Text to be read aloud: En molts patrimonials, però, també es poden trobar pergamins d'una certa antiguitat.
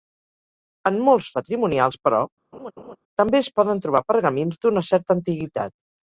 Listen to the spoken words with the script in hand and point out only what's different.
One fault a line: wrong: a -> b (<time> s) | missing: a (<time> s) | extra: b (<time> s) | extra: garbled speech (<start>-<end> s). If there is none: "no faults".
no faults